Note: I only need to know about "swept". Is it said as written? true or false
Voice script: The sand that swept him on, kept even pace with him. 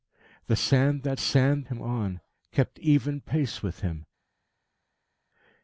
false